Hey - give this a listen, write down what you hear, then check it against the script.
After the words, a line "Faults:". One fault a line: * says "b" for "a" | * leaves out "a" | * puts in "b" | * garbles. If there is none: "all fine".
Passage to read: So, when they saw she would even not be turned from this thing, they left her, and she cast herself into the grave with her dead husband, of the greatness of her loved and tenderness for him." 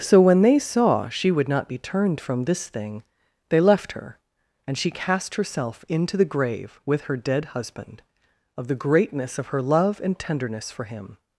So, when they saw she would not be turned from this thing, they left her, and she cast herself into the grave with her dead husband, of the greatness of her love and tenderness for him."
Faults:
* leaves out "even"
* says "love" for "loved"